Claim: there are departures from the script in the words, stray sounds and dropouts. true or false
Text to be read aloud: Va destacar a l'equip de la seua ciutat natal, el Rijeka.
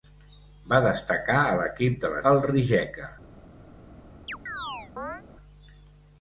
true